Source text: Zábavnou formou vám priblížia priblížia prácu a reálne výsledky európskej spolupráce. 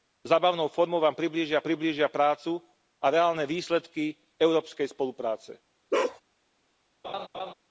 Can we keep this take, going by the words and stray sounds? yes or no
no